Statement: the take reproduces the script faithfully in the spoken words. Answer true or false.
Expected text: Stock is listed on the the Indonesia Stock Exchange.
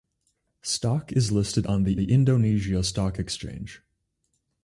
true